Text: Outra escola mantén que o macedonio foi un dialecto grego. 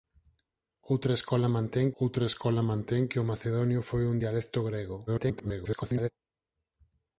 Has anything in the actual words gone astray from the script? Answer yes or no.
yes